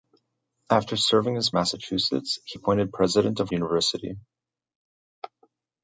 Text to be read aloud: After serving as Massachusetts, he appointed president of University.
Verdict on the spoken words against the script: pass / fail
pass